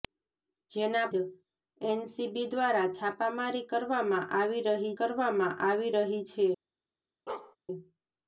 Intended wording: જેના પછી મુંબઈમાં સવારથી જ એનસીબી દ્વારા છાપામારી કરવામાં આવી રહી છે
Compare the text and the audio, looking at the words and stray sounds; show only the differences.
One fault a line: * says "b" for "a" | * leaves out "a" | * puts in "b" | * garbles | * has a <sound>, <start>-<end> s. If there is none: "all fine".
* leaves out "પછી મુંબઈમાં સવારથી"
* puts in "કરવામાં આવી રહી"
* has a bark, 7.3-7.6 s